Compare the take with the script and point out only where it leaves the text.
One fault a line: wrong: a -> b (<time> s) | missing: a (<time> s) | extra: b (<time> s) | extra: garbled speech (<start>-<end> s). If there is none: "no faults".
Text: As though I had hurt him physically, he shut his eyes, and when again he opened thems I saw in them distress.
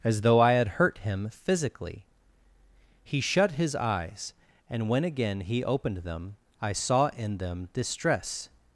wrong: thems -> them (6.0 s)